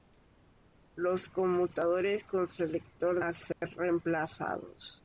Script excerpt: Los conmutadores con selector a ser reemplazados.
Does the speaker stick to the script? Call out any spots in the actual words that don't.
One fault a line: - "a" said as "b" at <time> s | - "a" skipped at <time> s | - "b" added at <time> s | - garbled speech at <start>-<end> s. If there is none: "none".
none